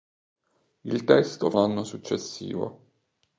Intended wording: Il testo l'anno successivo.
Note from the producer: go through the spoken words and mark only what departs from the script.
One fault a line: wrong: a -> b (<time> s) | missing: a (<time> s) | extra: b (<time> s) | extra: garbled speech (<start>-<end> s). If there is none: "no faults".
no faults